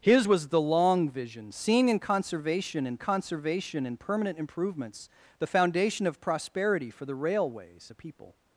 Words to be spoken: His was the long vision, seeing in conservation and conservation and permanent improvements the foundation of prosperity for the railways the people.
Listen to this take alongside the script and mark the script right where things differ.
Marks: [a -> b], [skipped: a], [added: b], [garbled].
His was the long vision, seeing in conservation and conservation and permanent improvements the foundation of prosperity for the railways the people.